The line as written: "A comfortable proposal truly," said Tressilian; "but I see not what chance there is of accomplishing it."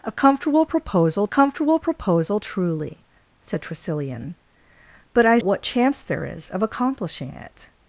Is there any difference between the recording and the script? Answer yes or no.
yes